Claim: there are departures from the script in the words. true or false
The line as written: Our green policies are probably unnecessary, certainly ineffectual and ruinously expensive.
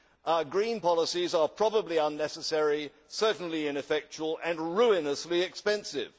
false